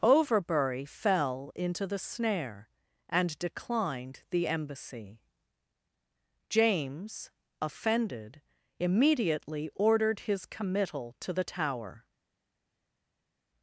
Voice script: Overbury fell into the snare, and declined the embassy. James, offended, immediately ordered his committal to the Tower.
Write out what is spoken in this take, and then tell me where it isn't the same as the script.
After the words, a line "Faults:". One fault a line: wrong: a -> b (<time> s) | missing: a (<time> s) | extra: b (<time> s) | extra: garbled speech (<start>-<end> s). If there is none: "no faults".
Overbury fell into the snare, and declined the embassy. James, offended, immediately ordered his committal to the Tower.
Faults:
no faults